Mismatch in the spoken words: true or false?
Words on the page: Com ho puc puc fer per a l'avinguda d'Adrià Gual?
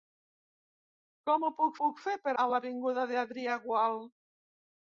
false